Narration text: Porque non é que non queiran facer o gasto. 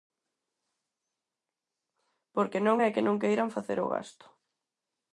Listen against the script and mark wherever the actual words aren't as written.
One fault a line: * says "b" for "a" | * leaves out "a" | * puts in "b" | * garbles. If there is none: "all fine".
all fine